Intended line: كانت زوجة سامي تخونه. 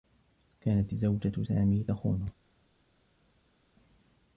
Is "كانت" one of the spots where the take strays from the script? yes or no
no